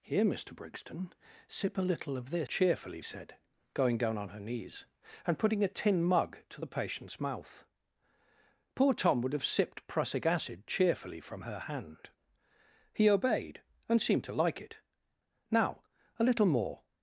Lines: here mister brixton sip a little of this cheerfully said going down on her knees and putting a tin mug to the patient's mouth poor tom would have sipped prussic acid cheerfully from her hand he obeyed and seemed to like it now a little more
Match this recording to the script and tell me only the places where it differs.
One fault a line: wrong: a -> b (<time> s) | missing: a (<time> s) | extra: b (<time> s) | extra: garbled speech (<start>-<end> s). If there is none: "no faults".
no faults